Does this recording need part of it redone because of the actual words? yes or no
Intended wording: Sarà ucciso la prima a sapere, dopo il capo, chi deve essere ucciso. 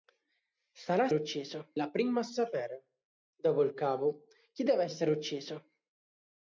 no